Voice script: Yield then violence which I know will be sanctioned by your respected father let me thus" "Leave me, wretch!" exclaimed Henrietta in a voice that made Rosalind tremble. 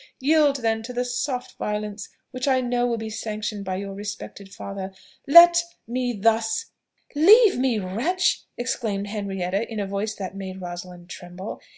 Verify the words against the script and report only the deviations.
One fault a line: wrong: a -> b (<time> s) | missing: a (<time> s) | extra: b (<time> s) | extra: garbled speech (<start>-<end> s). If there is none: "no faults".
extra: to the soft (0.8 s)